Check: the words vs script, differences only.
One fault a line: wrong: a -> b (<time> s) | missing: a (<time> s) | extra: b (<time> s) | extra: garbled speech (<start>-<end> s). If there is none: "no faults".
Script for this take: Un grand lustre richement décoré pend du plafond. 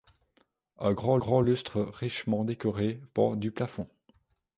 extra: grand (1.2 s)